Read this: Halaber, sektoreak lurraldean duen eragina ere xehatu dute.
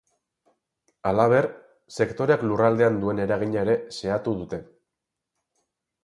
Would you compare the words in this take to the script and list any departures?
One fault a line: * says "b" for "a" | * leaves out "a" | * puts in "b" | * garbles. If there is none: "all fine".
all fine